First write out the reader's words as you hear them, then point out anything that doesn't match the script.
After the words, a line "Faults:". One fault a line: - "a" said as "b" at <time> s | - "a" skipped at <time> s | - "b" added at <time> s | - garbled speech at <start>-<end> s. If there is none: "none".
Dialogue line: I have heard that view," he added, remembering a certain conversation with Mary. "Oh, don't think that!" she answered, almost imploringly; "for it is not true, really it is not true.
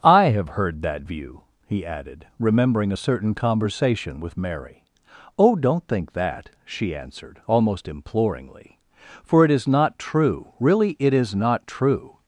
I have heard that view," he added, remembering a certain conversation with Mary. "Oh, don't think that!" she answered, almost imploringly; "for it is not true, really it is not true.
Faults:
none